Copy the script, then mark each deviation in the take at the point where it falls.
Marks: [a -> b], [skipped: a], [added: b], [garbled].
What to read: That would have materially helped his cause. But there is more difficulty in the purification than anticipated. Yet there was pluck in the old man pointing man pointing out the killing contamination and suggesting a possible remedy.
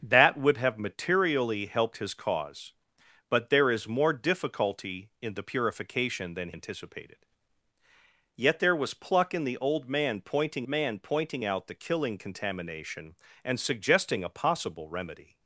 That would have materially helped his cause. But there is more difficulty in the purification than anticipated. Yet there was pluck in the old man pointing man pointing out the killing contamination and suggesting a possible remedy.